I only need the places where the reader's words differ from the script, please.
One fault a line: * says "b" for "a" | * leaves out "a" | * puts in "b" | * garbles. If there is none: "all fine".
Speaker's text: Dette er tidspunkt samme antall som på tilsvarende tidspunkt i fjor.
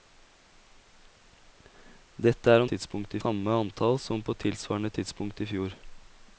all fine